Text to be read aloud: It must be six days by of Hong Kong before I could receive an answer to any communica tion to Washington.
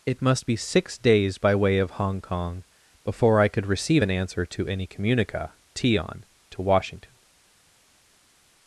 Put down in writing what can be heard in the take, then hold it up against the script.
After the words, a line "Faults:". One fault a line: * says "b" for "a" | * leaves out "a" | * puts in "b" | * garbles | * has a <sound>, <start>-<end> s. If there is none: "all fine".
It must be six days by way of Hong Kong before I could receive an answer to any communica tion to Washington.
Faults:
* puts in "way"